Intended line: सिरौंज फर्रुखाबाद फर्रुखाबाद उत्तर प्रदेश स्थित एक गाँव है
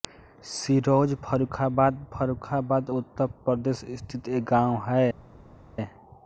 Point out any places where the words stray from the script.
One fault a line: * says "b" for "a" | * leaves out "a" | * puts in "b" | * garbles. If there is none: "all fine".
all fine